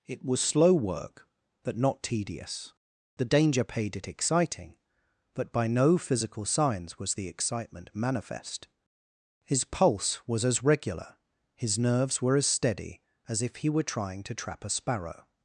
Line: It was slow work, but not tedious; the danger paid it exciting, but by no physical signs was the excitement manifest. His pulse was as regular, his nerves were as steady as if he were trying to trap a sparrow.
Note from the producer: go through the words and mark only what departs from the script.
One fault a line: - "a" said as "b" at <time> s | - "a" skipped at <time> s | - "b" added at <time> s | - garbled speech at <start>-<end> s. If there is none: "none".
none